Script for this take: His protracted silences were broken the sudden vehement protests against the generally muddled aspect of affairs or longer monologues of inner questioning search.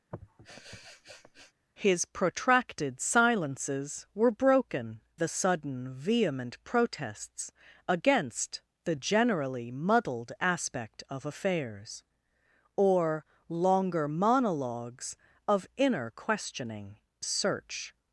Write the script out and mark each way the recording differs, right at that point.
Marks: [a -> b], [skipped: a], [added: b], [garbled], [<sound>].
[sniff] His protracted silences were broken the sudden vehement protests against the generally muddled aspect of affairs or longer monologues of inner questioning search.